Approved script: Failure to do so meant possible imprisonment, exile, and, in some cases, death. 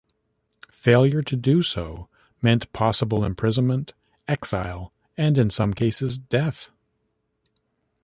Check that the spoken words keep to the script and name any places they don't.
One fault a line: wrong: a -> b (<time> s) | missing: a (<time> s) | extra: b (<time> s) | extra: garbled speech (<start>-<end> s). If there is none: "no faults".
no faults